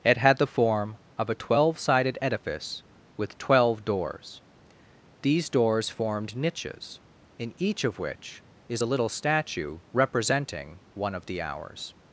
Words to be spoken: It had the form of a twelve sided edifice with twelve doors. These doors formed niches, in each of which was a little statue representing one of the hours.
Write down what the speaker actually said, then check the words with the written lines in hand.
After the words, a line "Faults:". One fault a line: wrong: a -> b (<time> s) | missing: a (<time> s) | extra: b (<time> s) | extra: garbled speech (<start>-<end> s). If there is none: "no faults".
It had the form of a twelve sided edifice with twelve doors. These doors formed niches, in each of which is a little statue representing one of the hours.
Faults:
wrong: was -> is (8.7 s)